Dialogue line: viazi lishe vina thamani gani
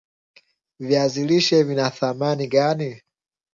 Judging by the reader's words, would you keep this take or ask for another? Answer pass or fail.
pass